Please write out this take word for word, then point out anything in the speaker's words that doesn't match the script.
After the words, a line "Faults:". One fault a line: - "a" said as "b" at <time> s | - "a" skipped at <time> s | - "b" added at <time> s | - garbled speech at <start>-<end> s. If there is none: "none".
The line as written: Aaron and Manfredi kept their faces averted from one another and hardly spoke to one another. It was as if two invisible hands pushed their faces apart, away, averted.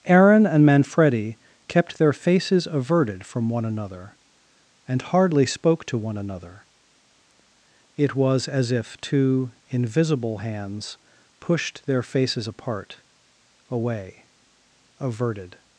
Aaron and Manfredi kept their faces averted from one another and hardly spoke to one another. It was as if two invisible hands pushed their faces apart, away, averted.
Faults:
none